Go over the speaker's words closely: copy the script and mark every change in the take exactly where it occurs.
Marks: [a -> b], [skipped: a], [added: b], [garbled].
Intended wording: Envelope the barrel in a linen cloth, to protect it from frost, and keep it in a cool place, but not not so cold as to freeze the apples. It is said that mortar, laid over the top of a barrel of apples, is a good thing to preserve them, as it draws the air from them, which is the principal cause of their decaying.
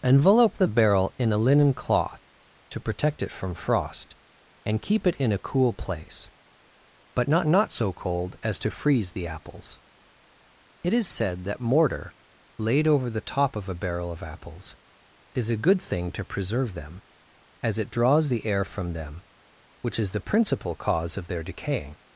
Envelope the barrel in a linen cloth, to protect it from frost, and keep it in a cool place, but not not so cold as to freeze the apples. It is said that mortar, laid over the top of a barrel of apples, is a good thing to preserve them, as it draws the air from them, which is the principal cause of their decaying.